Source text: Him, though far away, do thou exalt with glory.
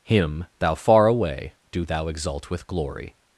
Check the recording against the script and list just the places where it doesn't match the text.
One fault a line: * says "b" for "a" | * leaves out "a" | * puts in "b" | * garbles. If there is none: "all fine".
* says "thou" for "though"